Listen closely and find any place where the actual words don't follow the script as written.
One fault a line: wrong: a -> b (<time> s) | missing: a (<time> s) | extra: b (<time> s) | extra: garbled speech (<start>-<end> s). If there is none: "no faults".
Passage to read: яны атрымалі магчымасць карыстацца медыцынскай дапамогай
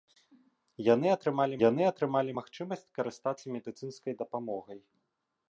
extra: яны атрымалі (1.7 s)